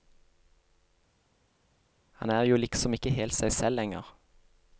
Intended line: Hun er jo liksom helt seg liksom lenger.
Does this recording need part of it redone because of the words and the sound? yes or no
yes